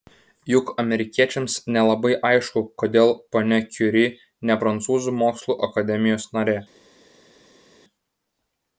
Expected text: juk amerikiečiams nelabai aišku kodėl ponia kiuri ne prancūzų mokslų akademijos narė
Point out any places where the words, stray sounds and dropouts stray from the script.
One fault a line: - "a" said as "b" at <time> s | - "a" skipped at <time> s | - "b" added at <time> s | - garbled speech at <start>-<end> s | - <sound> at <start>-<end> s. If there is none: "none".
none